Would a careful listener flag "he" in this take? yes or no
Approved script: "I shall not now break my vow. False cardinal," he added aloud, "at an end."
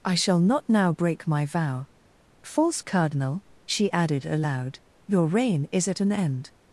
yes